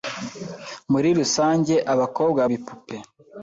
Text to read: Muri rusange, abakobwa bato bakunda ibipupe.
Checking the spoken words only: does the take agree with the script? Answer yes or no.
no